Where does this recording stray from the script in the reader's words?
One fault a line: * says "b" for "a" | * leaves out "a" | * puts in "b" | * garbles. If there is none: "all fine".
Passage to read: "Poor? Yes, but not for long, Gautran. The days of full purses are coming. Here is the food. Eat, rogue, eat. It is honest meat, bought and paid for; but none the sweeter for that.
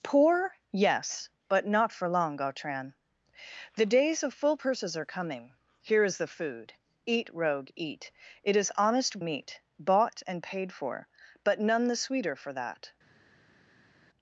all fine